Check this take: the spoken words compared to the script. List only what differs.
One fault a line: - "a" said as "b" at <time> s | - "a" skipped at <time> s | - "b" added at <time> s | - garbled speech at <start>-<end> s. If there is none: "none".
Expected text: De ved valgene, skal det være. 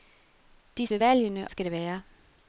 none